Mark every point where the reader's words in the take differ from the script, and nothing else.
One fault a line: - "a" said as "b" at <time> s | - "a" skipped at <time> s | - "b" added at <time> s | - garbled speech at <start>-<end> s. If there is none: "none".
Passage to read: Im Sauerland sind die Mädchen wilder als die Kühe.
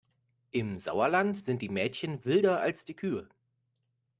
none